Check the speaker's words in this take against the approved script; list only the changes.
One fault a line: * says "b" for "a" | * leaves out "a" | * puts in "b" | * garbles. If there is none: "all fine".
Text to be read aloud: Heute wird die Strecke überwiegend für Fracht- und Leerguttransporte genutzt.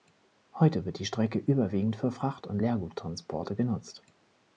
all fine